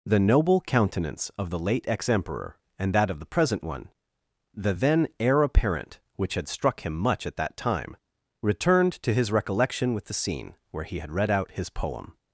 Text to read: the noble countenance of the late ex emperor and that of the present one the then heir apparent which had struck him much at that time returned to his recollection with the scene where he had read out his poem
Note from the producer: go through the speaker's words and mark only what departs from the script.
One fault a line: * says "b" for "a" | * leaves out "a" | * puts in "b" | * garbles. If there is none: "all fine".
all fine